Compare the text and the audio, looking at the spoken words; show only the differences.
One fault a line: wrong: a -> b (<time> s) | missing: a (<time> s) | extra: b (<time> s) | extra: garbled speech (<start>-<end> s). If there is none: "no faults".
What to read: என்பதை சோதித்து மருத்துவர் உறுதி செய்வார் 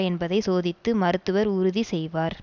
no faults